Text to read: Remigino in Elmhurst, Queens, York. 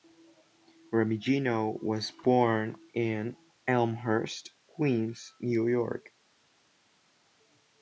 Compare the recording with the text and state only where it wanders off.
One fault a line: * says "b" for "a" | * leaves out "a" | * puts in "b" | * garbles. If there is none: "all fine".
* puts in "was born"
* puts in "New"